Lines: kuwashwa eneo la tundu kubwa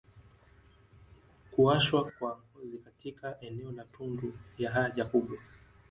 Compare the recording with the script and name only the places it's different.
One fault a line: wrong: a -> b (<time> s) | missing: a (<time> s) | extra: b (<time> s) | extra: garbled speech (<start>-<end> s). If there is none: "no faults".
extra: kwa ngozi katika (2.1 s)
extra: ya haja (4.6 s)